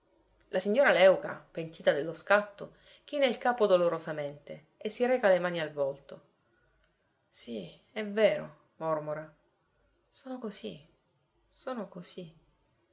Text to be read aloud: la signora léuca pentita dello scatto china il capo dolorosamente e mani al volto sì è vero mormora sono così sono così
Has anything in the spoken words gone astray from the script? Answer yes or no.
yes